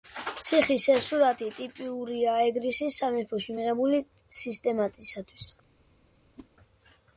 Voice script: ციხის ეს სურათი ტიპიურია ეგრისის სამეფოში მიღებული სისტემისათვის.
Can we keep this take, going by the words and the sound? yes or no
no